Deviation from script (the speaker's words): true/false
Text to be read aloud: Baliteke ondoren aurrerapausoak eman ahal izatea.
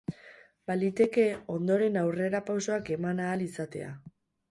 false